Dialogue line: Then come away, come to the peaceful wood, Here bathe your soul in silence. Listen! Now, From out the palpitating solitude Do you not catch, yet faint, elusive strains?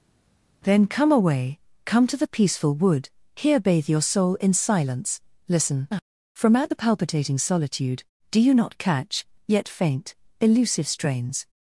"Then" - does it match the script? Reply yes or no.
yes